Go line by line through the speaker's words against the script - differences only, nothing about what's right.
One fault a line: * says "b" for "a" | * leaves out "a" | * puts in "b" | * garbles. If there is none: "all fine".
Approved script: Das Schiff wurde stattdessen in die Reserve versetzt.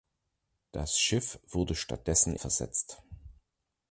* leaves out "in die Reserve"